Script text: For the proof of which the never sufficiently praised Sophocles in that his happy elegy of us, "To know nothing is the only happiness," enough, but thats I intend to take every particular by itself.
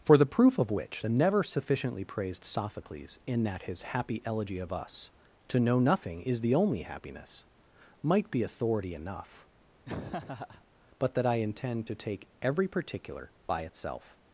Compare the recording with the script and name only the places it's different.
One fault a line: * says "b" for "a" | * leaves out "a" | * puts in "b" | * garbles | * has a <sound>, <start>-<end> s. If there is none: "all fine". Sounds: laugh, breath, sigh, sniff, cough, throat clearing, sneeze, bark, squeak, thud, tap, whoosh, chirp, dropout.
* puts in "might be authority"
* has a laugh, 9.8-10.6 s
* says "that" for "thats"